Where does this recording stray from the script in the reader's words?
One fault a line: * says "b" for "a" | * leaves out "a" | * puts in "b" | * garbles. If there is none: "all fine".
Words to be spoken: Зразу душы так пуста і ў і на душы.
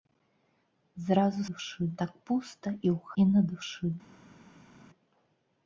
all fine